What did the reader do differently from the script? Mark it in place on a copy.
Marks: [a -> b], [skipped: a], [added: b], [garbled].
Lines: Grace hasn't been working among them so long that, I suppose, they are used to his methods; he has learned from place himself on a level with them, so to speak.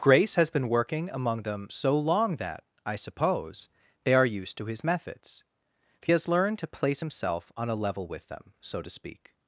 Grace [hasn't -> has] been working among them so long that, I suppose, they are used to his methods; he has learned [from -> to] place himself on a level with them, so to speak.